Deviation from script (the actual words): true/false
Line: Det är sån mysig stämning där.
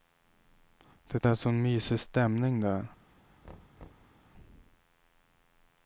false